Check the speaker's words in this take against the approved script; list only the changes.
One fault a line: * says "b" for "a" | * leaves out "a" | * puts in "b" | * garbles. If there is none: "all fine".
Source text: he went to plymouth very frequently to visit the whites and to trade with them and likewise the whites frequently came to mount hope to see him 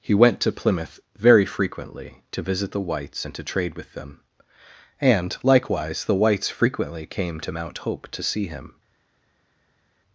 all fine